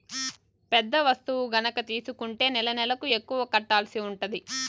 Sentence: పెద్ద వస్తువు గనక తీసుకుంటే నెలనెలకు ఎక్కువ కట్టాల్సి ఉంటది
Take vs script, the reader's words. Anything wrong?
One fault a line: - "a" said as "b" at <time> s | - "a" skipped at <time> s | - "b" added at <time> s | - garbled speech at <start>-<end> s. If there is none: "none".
none